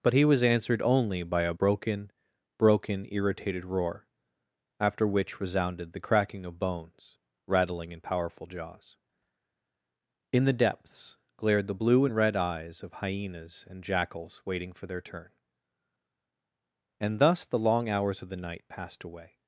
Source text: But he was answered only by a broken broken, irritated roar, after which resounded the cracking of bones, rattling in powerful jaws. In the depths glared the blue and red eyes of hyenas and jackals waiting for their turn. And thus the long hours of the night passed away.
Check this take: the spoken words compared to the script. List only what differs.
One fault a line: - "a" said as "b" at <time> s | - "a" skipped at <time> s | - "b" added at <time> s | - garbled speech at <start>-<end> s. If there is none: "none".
none